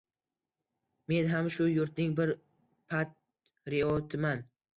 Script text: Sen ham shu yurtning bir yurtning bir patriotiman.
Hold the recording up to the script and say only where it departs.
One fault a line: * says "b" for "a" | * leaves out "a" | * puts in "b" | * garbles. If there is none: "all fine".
* says "Men" for "Sen"
* leaves out "yurtning bir"